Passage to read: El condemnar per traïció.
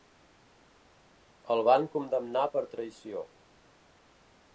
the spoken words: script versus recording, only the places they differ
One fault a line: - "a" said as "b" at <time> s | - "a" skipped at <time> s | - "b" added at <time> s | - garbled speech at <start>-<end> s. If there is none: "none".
- "van" added at 1.7 s